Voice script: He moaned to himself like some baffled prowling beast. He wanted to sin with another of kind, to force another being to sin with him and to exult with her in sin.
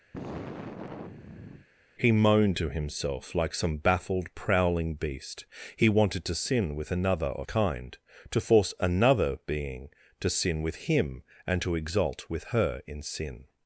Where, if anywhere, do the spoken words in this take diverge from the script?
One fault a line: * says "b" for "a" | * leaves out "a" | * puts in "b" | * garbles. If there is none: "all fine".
all fine